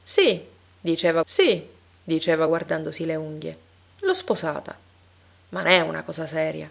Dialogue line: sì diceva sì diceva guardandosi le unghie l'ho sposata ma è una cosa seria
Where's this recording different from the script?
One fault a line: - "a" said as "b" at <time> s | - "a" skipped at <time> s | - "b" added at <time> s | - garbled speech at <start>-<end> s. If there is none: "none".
none